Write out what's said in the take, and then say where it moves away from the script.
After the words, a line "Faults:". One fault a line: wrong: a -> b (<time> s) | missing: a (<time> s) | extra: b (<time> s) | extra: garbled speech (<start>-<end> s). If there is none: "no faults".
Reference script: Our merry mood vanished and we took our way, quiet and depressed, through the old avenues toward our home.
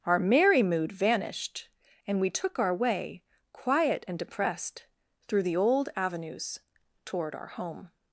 Our merry mood vanished and we took our way, quiet and depressed, through the old avenues toward our home.
Faults:
no faults